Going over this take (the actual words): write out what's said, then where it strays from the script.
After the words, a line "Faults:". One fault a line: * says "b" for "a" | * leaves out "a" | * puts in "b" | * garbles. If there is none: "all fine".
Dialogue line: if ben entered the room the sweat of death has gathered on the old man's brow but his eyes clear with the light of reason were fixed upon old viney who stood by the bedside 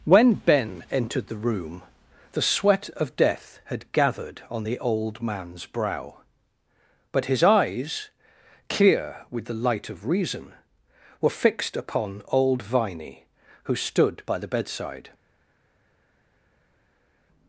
when ben entered the room the sweat of death had gathered on the old man's brow but his eyes clear with the light of reason were fixed upon old viney who stood by the bedside
Faults:
* says "when" for "if"
* says "had" for "has"